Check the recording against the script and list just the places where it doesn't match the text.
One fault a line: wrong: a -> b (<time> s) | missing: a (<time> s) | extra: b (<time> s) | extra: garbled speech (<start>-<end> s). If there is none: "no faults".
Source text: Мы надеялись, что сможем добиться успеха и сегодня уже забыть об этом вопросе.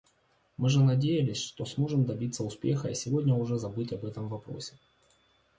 extra: же (0.7 s)